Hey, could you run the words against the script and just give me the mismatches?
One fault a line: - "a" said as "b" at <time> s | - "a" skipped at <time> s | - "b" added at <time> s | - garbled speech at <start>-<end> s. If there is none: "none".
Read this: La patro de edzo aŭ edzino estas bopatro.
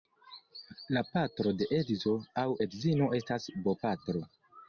none